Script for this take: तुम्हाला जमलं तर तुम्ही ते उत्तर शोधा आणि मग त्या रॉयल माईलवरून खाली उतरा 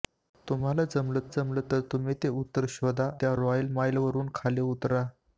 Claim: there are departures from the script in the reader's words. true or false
true